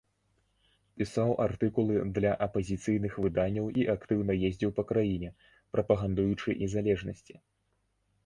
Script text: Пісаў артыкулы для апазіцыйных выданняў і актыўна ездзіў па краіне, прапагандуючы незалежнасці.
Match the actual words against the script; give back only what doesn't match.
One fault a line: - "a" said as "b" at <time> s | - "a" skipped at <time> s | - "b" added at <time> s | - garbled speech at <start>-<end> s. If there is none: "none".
none